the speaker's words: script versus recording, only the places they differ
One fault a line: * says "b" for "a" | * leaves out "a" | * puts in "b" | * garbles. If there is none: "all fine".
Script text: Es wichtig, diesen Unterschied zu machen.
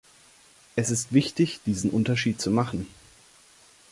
* puts in "ist"